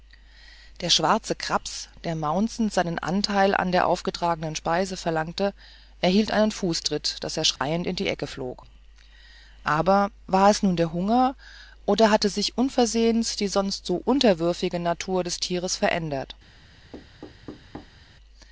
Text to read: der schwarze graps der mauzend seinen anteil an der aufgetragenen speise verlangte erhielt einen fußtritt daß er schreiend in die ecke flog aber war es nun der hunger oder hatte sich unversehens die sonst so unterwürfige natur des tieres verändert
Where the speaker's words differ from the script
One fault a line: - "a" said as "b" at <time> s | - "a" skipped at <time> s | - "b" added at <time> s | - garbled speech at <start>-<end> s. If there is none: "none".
none